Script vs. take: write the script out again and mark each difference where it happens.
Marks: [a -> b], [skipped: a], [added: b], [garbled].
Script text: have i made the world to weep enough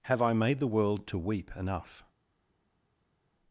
have i made the world to weep enough